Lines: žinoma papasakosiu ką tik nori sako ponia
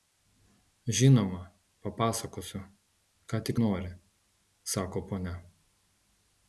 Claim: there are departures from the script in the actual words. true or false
false